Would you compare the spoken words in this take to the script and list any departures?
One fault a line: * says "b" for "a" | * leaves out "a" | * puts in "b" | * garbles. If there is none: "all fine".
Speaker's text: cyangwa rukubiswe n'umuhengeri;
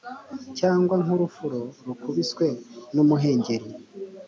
* puts in "nk'urufuro"